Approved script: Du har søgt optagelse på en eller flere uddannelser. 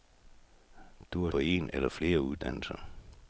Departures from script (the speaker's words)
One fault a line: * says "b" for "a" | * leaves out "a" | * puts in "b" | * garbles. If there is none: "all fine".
* leaves out "søgt optagelse"